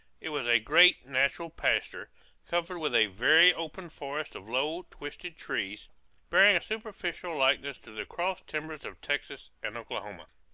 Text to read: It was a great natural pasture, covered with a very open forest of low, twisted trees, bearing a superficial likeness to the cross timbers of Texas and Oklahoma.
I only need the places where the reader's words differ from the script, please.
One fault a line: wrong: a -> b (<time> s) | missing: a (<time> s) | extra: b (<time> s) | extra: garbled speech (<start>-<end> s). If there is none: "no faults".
no faults